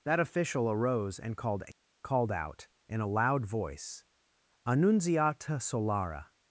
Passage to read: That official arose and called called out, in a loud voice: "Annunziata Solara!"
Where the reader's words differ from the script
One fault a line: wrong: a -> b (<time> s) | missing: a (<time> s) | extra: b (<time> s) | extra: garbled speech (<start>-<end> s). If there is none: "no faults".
no faults